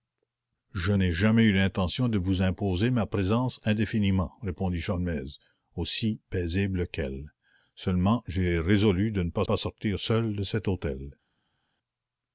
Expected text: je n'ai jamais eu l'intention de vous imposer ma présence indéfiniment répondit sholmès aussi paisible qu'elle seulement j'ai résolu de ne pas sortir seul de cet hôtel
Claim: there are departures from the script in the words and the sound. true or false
true